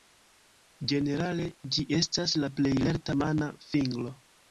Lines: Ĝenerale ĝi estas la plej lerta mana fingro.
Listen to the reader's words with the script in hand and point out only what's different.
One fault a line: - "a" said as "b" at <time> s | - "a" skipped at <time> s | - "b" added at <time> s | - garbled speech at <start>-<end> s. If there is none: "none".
none